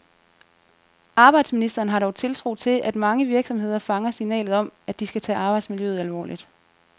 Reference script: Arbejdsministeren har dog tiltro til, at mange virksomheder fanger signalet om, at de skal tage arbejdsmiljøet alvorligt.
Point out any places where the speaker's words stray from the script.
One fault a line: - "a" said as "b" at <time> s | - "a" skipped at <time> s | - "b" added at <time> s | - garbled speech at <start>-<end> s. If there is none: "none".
none